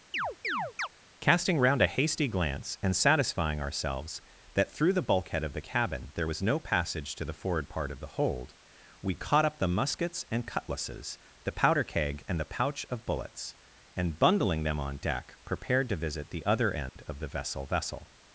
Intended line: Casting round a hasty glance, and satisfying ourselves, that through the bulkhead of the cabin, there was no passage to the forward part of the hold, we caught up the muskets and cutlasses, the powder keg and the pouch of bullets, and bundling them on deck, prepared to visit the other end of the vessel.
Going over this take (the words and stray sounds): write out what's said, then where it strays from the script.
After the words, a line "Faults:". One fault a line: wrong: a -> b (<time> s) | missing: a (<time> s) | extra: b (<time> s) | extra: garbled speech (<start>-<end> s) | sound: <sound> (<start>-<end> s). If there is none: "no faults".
Casting round a hasty glance, and satisfying ourselves, that through the bulkhead of the cabin, there was no passage to the forward part of the hold, we caught up the muskets and cutlasses, the powder keg and the pouch of bullets, and bundling them on deck, prepared to visit the other end of the vessel vessel.
Faults:
sound: chirp (0.1-0.9 s)
sound: dropout (16.9-17.0 s)
extra: vessel (17.6 s)